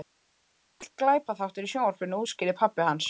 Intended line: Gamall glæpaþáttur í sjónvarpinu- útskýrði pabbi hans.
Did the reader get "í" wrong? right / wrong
right